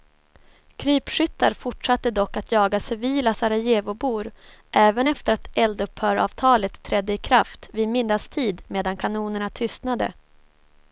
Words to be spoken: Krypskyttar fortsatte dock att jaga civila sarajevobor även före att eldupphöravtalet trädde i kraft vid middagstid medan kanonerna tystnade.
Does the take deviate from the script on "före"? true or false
true